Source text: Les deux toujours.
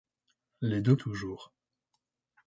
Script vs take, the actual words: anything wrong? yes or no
no